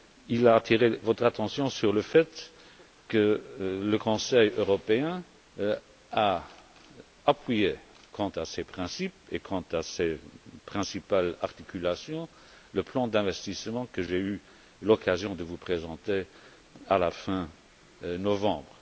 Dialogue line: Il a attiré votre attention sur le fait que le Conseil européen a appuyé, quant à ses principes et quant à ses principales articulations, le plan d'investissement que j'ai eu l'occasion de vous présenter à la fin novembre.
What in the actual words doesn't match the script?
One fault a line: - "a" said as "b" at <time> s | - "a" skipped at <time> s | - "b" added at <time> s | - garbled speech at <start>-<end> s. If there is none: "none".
none